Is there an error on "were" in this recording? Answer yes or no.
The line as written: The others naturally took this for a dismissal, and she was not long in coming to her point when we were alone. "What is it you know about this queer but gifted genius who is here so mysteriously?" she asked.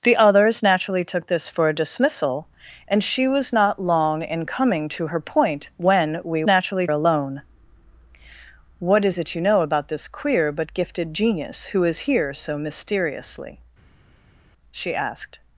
yes